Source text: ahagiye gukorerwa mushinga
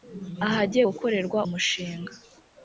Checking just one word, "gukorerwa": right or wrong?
right